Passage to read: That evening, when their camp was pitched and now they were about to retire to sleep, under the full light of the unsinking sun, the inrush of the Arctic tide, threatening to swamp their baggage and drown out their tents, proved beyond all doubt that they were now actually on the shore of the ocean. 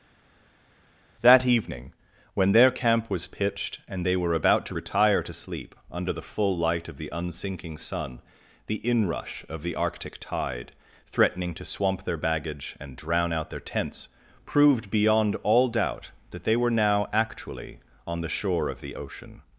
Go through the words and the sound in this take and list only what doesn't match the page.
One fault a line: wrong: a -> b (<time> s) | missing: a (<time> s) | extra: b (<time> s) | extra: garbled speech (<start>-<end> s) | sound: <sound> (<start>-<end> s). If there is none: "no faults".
missing: now (4.0 s)